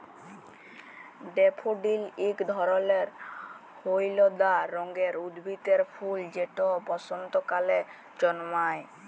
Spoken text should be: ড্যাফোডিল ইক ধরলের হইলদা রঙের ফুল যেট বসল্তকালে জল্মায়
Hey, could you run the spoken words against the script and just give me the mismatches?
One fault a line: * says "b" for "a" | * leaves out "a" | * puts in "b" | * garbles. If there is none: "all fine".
* puts in "উদ্ভিদের"